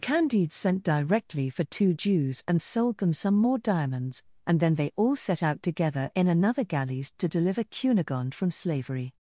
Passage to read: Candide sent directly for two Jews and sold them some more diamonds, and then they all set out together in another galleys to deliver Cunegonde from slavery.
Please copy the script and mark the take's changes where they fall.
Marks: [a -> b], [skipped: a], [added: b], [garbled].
Candide sent directly for two Jews and sold them some more diamonds, and then they all set out together in another galleys to deliver Cunegonde from slavery.